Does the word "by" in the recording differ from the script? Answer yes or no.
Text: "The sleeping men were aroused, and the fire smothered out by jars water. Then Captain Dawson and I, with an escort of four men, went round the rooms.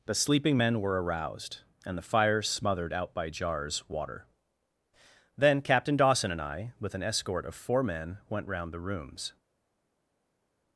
no